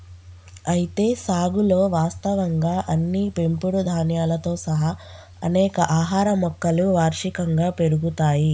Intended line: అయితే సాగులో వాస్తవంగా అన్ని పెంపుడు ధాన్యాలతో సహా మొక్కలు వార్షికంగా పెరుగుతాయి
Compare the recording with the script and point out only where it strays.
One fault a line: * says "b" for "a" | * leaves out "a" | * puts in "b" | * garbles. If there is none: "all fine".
* puts in "అనేక ఆహార"